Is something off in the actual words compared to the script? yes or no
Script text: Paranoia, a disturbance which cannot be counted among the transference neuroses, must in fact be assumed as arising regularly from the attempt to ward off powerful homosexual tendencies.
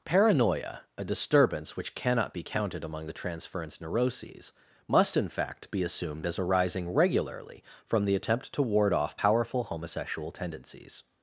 no